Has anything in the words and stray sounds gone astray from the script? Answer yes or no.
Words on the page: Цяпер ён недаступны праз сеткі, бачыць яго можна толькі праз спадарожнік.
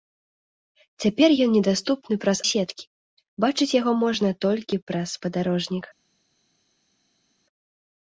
no